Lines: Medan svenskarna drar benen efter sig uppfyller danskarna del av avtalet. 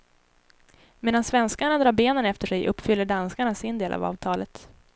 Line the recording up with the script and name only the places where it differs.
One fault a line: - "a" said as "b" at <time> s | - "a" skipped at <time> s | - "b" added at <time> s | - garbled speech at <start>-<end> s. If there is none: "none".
- "sin" added at 3.5 s